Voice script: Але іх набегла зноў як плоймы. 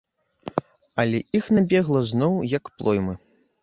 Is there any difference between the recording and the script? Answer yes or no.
no